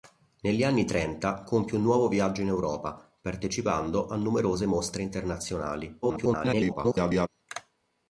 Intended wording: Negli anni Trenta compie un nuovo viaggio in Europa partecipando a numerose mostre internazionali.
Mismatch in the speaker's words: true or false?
true